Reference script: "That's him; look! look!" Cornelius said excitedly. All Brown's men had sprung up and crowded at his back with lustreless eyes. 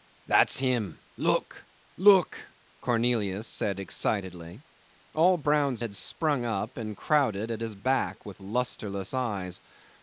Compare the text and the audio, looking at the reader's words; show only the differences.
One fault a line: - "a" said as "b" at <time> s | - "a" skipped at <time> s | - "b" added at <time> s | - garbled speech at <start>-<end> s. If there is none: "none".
- "men" skipped at 5.8 s